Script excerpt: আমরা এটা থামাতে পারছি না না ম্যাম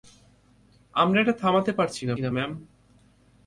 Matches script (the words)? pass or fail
pass